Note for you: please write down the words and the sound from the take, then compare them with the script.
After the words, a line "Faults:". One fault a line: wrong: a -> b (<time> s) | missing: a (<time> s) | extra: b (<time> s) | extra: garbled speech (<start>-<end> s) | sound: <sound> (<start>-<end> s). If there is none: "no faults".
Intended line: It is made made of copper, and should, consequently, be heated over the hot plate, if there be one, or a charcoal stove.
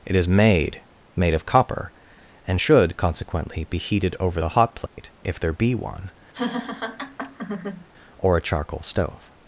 It is made made of copper, and should, consequently, be heated over the hot plate, if there be one, or a charcoal stove.
Faults:
sound: dropout (4.9-5.0 s)
sound: laugh (6.3-7.9 s)